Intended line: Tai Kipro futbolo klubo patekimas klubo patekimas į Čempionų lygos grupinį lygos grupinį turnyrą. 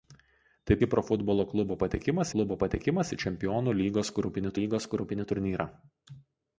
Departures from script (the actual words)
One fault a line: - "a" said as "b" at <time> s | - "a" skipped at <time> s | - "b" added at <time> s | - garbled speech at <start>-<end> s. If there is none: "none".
none